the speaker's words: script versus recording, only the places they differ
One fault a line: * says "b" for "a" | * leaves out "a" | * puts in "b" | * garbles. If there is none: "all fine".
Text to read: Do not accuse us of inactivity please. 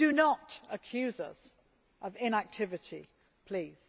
all fine